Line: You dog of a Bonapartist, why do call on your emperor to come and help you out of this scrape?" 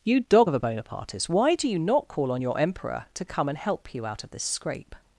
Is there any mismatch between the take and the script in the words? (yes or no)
yes